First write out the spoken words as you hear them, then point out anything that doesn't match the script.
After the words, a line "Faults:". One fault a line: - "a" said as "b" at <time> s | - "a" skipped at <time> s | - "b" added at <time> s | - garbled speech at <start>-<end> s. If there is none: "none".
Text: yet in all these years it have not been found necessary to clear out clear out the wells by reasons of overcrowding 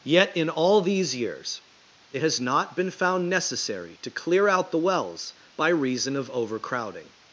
yet in all these years it has not been found necessary to clear out the wells by reason of overcrowding
Faults:
- "have" said as "has" at 2.2 s
- "clear out" skipped at 4.7 s
- "reasons" said as "reason" at 5.7 s